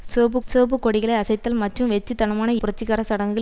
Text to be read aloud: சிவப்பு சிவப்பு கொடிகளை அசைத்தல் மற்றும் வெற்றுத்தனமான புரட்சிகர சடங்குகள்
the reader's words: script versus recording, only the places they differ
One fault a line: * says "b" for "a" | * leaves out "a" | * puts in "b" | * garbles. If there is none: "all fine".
all fine